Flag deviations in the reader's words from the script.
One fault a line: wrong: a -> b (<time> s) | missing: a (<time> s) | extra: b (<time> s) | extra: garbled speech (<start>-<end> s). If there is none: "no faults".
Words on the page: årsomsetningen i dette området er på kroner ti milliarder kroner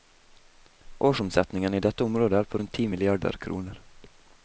wrong: kroner -> rundt (2.6 s)